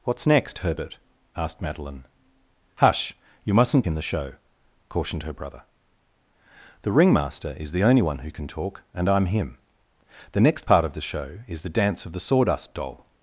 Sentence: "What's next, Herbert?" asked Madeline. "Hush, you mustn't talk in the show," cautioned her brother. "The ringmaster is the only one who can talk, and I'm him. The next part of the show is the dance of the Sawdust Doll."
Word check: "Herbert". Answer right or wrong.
right